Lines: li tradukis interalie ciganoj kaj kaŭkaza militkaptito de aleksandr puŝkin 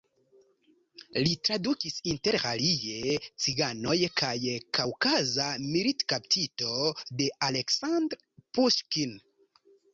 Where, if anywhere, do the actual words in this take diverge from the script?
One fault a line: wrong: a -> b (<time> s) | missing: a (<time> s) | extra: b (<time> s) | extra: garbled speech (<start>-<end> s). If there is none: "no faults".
no faults